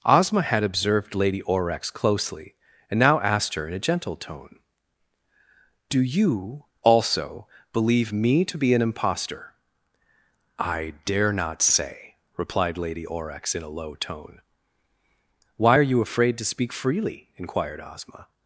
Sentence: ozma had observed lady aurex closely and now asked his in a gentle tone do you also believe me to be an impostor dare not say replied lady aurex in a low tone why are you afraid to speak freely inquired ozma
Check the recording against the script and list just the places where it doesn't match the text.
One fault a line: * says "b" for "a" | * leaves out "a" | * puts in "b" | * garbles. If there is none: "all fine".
* says "her" for "his"
* puts in "i"